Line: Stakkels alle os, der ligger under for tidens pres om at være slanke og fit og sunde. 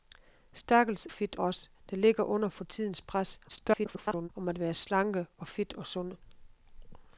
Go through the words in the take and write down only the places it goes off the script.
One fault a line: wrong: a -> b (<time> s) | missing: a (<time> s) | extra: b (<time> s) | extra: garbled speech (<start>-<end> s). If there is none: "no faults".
wrong: alle -> fit (1.1 s)
extra: garbled speech (3.5-4.3 s)